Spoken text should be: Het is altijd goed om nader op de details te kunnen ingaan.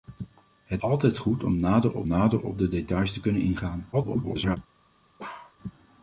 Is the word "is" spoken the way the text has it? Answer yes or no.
no